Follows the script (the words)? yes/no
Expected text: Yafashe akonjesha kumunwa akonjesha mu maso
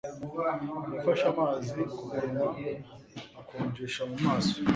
no